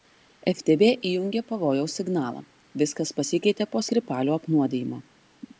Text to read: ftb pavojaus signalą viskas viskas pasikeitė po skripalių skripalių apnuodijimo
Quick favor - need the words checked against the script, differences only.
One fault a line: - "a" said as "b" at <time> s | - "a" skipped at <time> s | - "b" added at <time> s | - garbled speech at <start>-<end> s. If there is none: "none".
- "įjungė" added at 1.1 s
- "viskas" skipped at 3.1 s
- "skripalių" skipped at 4.4 s